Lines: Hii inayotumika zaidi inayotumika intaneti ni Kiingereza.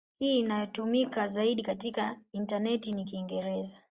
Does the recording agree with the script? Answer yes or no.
no